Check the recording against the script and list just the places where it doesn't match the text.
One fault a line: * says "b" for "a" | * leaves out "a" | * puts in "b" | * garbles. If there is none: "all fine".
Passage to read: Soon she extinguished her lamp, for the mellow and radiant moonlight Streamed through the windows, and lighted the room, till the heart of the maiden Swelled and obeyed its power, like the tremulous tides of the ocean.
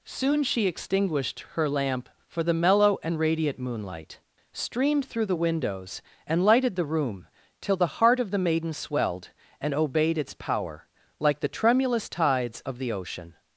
all fine